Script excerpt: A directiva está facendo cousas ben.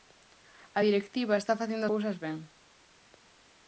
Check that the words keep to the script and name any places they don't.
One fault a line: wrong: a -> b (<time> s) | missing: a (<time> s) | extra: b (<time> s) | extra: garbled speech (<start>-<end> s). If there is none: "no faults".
no faults